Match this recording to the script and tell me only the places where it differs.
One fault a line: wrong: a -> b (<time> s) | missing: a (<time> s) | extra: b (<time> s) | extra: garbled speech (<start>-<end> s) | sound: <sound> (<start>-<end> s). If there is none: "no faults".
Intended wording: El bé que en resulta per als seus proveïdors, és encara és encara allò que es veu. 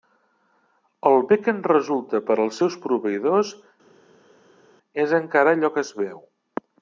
missing: és encara (5.5 s)